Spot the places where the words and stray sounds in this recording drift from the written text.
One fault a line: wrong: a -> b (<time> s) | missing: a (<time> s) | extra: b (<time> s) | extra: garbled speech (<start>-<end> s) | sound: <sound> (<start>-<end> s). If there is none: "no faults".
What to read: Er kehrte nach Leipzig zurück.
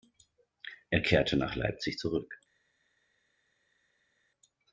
no faults